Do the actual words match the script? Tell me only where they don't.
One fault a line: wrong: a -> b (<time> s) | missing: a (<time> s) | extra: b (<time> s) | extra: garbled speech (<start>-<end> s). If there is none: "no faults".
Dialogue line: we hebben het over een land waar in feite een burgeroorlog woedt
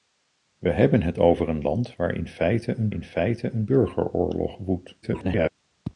extra: in feite een (2.9 s)
extra: garbled speech (5.0-5.5 s)